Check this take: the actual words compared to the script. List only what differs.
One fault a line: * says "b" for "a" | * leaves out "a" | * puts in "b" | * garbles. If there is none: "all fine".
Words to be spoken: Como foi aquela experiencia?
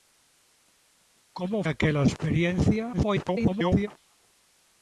* leaves out "foi"
* garbles